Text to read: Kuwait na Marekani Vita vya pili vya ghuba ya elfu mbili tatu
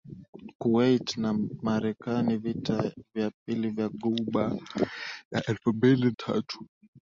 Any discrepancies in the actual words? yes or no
no